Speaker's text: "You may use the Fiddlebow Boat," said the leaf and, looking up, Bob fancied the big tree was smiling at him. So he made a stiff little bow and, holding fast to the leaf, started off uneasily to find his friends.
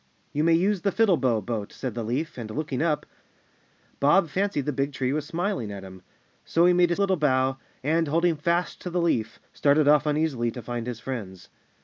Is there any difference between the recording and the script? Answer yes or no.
yes